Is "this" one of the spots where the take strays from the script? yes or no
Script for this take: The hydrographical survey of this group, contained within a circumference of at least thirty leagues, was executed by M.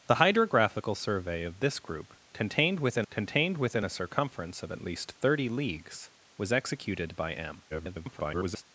no